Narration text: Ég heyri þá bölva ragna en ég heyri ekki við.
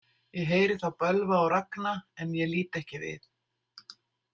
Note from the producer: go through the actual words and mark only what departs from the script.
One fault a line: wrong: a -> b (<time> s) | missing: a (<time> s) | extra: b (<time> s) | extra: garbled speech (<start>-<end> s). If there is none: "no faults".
extra: og (1.4 s)
wrong: heyri -> lít (2.6 s)